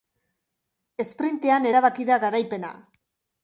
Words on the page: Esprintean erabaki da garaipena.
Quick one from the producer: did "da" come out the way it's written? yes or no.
yes